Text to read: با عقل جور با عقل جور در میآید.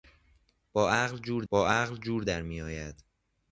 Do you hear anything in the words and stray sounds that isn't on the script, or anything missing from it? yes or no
no